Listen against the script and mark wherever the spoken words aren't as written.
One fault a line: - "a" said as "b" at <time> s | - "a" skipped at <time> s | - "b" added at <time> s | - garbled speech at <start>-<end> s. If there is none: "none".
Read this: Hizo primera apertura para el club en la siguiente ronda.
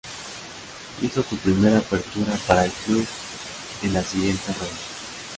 - "su" added at 1.2 s